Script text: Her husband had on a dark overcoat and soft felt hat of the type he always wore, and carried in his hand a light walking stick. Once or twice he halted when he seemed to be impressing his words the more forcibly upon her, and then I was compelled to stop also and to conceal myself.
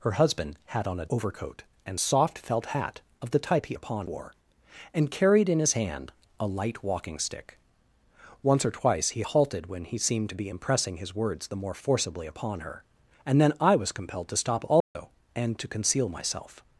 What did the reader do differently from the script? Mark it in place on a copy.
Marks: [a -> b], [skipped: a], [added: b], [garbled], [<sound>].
Her husband had on a [skipped: dark] overcoat and soft felt hat of the type he [always -> upon] wore, and carried in his hand a light walking stick. Once or twice he halted when he seemed to be impressing his words the more forcibly upon her, and then I was compelled to stop also [dropout] and to conceal myself.